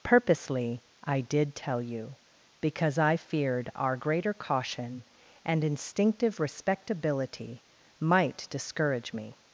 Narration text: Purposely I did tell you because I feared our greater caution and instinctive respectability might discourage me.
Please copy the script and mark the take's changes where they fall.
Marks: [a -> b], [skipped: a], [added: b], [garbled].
Purposely I did tell you because I feared our greater caution and instinctive respectability might discourage me.